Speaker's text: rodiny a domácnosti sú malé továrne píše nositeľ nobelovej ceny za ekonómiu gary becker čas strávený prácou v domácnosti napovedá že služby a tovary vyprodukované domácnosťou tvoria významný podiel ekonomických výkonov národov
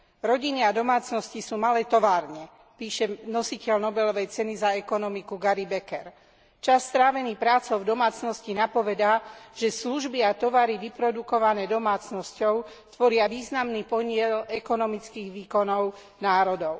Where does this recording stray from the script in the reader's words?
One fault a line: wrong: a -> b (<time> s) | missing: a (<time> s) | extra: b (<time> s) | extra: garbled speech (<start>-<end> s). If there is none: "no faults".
no faults